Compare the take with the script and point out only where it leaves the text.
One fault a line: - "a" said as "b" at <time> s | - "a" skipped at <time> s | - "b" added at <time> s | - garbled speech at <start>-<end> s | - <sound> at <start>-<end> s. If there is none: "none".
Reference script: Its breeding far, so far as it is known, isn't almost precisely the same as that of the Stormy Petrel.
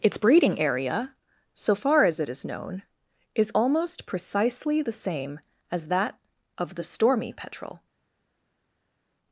- "far" said as "area" at 0.6 s
- "isn't" said as "is" at 3.3 s